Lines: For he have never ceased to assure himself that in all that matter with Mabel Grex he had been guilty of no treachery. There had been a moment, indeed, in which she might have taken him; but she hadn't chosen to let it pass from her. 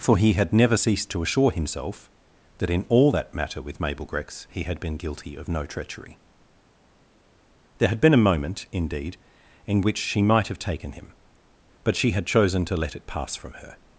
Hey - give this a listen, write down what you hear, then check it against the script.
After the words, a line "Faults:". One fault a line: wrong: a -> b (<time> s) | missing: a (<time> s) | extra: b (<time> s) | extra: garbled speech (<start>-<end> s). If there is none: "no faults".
For he had never ceased to assure himself that in all that matter with Mabel Grex he had been guilty of no treachery. There had been a moment, indeed, in which she might have taken him; but she had chosen to let it pass from her.
Faults:
wrong: have -> had (0.3 s)
wrong: hadn't -> had (12.1 s)